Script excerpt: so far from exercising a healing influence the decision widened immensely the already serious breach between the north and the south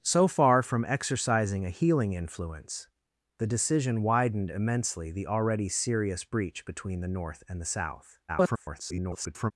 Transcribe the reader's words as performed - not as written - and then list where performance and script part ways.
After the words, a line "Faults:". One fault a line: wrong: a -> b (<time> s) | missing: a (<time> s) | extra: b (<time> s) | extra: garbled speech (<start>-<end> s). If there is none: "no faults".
so far from exercising a healing influence the decision widened immensely the already serious breach between the north and the south [garbled]
Faults:
extra: garbled speech (8.3-9.5 s)